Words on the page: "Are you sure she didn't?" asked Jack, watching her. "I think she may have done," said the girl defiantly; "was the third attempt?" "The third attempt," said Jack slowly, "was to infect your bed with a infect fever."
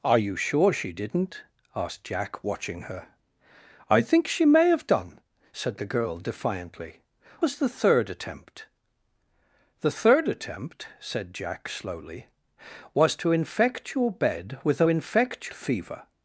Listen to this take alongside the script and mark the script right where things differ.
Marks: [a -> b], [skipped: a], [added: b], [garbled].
"Are you sure she didn't?" asked Jack, watching her. "I think she may have done," said the girl defiantly; "was the third attempt?" "The third attempt," said Jack slowly, "was to infect your bed with a infect fever."